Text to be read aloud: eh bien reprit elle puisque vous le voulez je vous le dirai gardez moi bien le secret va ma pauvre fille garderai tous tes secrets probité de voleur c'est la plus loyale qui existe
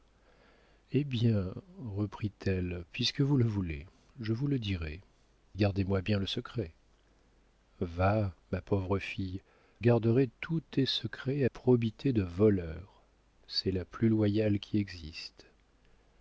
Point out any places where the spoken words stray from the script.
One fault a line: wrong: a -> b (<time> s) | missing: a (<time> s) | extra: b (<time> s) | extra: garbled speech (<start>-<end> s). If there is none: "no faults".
no faults